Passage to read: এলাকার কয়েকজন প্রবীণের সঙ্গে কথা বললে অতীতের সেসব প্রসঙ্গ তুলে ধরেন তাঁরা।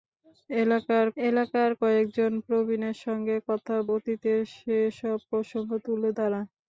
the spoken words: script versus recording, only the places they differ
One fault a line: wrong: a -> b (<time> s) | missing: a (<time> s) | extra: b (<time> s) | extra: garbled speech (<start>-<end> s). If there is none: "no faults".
extra: এলাকার (1.2 s)
missing: বললে (3.8 s)
missing: ধরেন (6.1 s)